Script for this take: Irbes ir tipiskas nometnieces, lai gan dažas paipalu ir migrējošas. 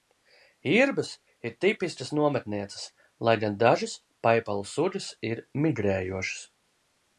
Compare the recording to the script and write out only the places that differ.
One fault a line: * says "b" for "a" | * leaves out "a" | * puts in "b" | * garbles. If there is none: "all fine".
* puts in "sugas"